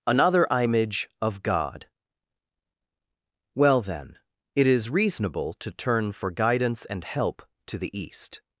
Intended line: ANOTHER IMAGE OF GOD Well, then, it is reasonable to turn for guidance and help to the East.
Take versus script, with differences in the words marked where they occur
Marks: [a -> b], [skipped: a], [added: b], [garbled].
ANOTHER IMAGE OF GOD Well, then, it is reasonable to turn for guidance and help to the East.